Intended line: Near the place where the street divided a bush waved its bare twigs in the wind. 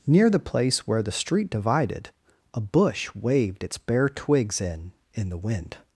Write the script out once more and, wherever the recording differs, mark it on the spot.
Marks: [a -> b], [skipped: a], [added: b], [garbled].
Near the place where the street divided a bush waved its bare twigs in [added: in] the wind.